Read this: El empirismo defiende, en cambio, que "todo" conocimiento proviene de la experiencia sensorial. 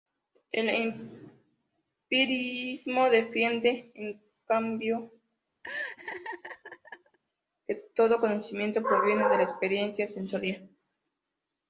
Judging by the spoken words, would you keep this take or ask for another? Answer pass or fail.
pass